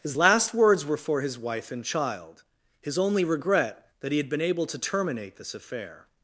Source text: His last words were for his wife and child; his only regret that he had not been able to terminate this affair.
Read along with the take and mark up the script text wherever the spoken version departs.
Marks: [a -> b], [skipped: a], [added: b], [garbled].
His last words were for his wife and child; his only regret that he had [skipped: not] been able to terminate this affair.